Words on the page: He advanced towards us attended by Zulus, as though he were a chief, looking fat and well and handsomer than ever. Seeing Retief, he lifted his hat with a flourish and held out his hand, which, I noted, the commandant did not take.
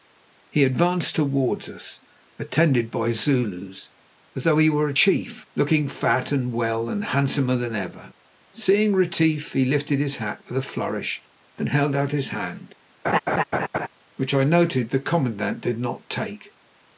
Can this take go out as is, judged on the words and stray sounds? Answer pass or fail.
fail